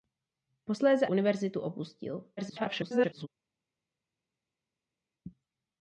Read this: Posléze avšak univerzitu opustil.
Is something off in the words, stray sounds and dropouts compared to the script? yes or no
yes